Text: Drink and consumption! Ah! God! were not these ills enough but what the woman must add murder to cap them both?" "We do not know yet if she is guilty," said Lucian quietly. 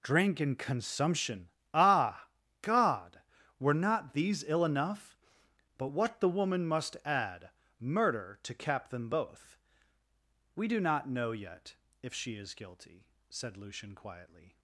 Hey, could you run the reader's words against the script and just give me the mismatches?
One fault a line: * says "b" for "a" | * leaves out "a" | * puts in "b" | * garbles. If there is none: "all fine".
* says "ill" for "ills"